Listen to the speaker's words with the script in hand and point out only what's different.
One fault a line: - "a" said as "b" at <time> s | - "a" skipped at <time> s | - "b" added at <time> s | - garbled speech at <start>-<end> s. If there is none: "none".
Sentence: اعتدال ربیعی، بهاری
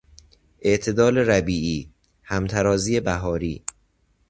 - "همترازی" added at 2.2 s